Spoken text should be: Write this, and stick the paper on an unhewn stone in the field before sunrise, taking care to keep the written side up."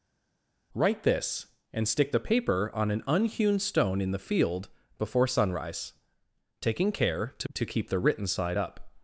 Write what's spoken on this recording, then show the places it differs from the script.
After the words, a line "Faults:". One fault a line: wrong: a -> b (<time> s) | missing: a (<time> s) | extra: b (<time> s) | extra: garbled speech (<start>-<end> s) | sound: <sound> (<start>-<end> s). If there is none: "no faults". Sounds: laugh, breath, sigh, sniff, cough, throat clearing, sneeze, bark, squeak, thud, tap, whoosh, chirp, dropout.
Write this, and stick the paper on an unhewn stone in the field before sunrise, taking care to to keep the written side up."
Faults:
extra: to (7.5 s)